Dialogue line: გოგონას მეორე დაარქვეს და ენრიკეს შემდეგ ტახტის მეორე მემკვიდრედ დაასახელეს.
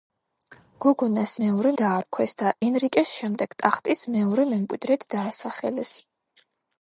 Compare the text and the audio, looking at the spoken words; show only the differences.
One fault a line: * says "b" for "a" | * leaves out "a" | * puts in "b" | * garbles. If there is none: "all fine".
all fine